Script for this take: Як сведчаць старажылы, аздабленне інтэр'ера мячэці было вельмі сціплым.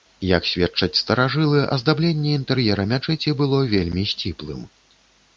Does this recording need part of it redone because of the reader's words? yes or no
no